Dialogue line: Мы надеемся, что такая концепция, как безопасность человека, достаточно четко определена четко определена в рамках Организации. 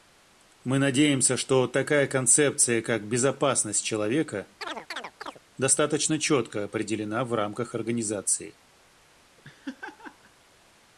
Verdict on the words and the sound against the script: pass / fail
fail